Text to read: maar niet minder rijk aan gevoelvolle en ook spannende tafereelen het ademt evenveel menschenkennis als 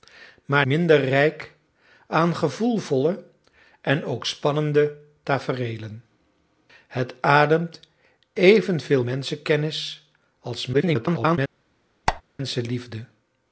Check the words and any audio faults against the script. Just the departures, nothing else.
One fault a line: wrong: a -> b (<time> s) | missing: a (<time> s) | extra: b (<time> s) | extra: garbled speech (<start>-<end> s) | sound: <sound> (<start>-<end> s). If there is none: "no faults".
missing: niet (0.7 s)
extra: garbled speech (10.7-11.4 s)
sound: squeak (12.1-12.2 s)